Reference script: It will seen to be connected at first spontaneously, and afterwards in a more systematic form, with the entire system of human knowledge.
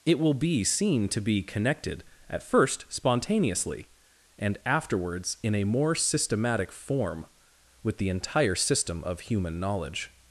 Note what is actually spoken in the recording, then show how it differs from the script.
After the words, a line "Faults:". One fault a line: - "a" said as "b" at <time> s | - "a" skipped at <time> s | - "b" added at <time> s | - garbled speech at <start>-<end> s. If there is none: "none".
It will be seen to be connected at first spontaneously, and afterwards in a more systematic form, with the entire system of human knowledge.
Faults:
- "be" added at 0.3 s